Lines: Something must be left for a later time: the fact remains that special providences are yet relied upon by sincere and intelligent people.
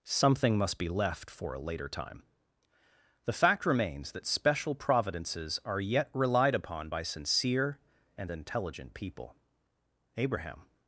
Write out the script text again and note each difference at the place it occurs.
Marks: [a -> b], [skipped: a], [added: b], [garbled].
Something must be left for a later time: the fact remains that special providences are yet relied upon by sincere and intelligent people. [added: Abraham]